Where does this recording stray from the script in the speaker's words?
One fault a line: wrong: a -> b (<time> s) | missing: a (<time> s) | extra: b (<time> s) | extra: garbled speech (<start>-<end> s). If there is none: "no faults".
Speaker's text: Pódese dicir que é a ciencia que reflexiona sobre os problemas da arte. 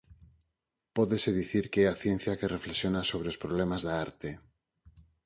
no faults